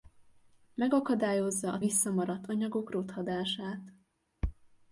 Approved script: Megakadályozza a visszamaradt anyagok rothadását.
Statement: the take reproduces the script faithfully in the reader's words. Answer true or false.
true